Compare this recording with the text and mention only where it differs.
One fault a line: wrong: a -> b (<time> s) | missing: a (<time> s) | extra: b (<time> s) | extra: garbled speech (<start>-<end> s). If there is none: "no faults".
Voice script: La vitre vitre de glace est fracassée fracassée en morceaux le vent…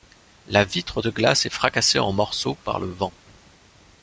missing: vitre (1.0 s)
missing: fracassée (2.0 s)
extra: par (2.6 s)